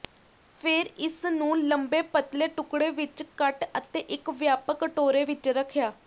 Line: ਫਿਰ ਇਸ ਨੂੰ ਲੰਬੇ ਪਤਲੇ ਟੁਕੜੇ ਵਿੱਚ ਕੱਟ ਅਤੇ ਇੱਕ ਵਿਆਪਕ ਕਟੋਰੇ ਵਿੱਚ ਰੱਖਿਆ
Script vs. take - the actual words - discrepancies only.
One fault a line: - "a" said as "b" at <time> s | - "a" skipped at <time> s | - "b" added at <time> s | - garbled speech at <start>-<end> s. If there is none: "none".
none